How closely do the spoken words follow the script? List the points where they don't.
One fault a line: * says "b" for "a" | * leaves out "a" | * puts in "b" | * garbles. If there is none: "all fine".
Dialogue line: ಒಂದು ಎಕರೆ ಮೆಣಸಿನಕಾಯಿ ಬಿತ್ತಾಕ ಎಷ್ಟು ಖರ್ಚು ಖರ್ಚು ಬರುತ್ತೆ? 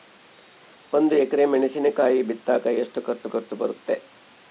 all fine